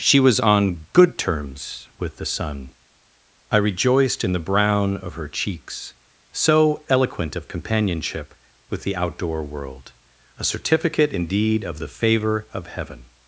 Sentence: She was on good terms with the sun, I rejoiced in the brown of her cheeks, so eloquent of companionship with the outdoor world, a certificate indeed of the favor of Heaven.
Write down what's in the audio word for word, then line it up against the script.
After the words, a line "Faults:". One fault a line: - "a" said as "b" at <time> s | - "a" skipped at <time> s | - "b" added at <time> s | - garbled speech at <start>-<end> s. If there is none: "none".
She was on good terms with the sun, I rejoiced in the brown of her cheeks, so eloquent of companionship with the outdoor world, a certificate indeed of the favor of Heaven.
Faults:
none